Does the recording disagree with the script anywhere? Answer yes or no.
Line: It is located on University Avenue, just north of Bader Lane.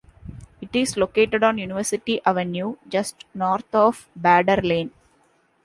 no